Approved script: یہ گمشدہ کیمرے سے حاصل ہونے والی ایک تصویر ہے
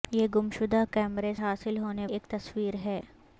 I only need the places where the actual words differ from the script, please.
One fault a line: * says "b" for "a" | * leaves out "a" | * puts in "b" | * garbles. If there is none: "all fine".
* leaves out "سے"
* leaves out "والی"